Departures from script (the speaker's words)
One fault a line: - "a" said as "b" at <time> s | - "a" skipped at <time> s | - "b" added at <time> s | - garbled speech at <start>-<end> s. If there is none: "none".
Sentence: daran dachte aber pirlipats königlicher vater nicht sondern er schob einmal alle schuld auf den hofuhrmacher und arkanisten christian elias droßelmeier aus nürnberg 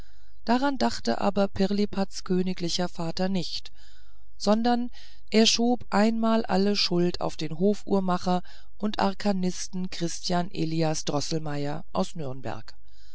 none